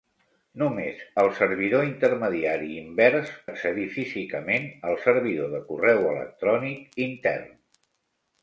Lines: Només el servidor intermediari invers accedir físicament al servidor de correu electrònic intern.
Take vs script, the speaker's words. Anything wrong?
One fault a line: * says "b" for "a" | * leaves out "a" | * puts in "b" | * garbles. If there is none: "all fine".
all fine